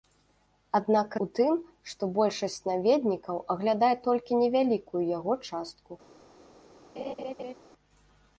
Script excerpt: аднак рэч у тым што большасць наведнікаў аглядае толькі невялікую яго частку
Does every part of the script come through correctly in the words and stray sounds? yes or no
no